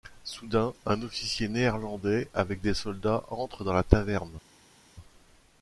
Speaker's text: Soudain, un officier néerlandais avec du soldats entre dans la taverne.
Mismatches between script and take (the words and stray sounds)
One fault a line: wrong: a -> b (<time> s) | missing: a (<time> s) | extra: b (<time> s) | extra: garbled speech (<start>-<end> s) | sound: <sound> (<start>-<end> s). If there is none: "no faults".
wrong: du -> des (2.6 s)